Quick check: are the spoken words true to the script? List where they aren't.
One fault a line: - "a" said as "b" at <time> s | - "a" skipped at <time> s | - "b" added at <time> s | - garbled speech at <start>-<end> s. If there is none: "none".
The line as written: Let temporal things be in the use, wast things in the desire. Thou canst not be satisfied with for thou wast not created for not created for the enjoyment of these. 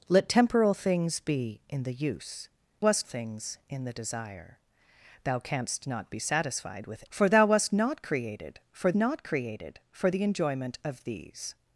none